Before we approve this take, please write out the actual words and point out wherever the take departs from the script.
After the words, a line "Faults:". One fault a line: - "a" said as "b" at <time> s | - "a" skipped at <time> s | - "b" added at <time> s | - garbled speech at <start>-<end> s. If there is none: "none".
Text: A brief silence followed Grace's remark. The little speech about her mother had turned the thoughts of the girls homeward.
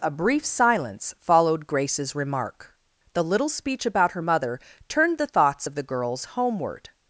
A brief silence followed Grace's remark. The little speech about her mother turned the thoughts of the girls homeward.
Faults:
- "had" skipped at 4.6 s